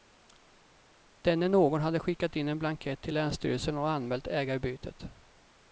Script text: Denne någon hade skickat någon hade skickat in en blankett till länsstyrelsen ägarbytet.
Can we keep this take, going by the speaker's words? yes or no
no